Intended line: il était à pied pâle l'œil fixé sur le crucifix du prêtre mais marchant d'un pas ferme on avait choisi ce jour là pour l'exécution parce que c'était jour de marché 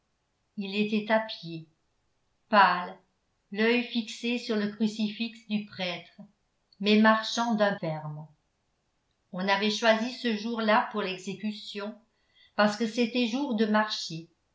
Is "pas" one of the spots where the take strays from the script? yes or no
yes